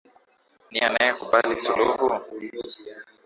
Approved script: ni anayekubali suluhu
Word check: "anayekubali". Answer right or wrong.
right